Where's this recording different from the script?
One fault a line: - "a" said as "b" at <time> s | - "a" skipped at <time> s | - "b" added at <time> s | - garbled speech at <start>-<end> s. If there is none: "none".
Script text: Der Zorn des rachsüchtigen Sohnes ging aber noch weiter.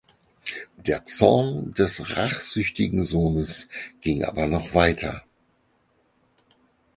none